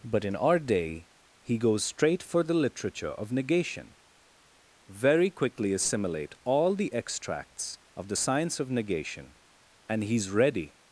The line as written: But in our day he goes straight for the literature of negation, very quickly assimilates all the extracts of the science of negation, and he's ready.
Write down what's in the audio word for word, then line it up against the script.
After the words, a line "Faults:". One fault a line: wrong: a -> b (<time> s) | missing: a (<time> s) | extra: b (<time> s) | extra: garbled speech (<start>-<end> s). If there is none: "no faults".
But in our day he goes straight for the literature of negation, very quickly assimilate all the extracts of the science of negation, and he's ready.
Faults:
wrong: assimilates -> assimilate (5.7 s)